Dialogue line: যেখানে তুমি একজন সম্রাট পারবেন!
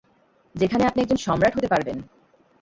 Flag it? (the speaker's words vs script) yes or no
yes